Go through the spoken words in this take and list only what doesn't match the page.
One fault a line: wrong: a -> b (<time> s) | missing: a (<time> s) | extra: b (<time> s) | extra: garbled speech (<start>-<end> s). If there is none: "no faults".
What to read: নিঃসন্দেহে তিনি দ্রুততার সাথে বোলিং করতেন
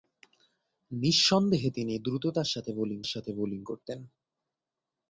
extra: সাথে বোলিং (3.1 s)